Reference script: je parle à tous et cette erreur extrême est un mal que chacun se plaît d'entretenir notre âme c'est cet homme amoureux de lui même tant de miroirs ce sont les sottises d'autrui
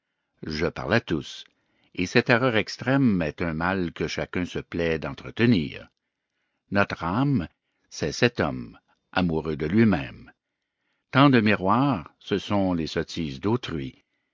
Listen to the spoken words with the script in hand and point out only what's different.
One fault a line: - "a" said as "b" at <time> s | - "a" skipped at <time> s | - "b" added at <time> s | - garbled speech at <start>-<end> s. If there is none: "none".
none